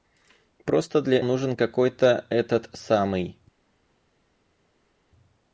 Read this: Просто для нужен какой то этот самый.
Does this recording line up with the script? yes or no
yes